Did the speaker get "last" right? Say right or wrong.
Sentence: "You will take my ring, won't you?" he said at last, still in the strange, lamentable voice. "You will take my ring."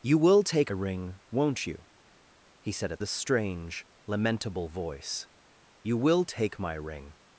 wrong